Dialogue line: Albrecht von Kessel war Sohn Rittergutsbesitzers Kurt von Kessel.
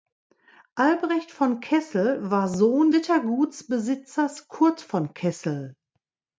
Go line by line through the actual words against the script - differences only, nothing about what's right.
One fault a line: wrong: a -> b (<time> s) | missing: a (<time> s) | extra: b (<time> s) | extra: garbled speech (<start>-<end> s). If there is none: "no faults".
no faults